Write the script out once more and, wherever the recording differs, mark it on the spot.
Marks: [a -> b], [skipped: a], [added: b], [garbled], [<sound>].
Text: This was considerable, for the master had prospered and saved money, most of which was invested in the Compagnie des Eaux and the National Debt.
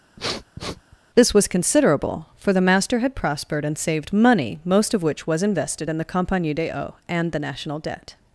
[sniff] This was considerable, for the master had prospered and saved money, most of which was invested in the Compagnie des Eaux and the National Debt.